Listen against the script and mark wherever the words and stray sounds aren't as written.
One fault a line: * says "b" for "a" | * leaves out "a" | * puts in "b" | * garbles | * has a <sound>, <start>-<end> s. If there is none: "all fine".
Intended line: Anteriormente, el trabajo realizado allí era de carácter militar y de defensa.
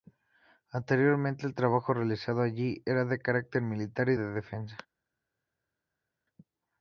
all fine